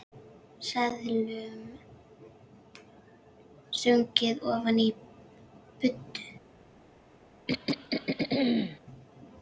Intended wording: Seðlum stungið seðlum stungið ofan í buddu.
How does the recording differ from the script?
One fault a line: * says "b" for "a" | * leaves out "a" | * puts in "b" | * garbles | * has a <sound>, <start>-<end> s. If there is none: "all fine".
* leaves out "seðlum stungið"
* has a throat clearing, 7.5-8.8 s